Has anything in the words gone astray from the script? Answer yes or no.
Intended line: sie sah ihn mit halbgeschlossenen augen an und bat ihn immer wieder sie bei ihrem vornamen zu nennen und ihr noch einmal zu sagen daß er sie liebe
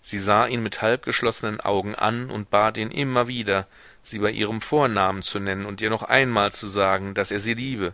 no